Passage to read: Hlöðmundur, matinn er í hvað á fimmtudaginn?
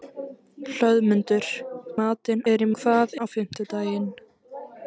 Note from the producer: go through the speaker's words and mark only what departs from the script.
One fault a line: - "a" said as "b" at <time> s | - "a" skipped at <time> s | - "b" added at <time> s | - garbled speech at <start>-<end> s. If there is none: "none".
none